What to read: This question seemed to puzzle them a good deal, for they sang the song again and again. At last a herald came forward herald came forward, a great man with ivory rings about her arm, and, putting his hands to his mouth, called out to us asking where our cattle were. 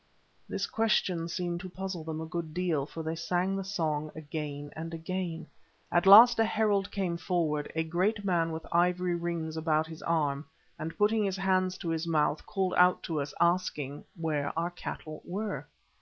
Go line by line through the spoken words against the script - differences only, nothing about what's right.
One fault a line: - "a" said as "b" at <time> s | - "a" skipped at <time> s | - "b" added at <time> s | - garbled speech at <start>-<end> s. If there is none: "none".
- "herald came forward" skipped at 7.7 s
- "her" said as "his" at 9.9 s